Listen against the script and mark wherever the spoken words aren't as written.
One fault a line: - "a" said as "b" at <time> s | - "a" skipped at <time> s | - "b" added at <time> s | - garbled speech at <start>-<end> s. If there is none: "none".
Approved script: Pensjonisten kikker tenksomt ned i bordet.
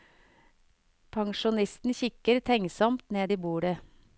none